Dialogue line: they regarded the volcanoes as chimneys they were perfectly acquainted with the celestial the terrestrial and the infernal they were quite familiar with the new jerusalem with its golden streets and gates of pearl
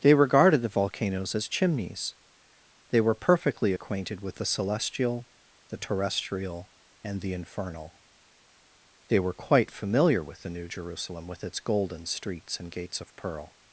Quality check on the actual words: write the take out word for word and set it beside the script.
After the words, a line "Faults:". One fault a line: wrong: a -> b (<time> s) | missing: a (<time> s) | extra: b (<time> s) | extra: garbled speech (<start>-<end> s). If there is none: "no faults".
they regarded the volcanoes as chimneys they were perfectly acquainted with the celestial the terrestrial and the infernal they were quite familiar with the new jerusalem with its golden streets and gates of pearl
Faults:
no faults